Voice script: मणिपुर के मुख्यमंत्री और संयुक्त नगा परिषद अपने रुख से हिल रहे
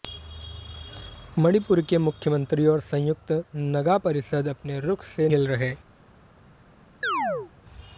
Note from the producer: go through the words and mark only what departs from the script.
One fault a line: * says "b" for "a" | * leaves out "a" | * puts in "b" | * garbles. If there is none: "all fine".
all fine